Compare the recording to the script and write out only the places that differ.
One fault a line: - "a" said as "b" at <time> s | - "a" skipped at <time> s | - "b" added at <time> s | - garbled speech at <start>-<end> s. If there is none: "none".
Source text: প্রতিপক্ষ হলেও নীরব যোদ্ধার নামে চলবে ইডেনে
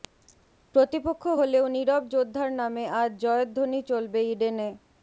- "আজ জয়ধ্বনি" added at 3.0 s